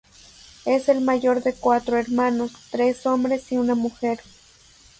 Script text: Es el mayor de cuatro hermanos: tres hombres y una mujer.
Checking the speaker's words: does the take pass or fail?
pass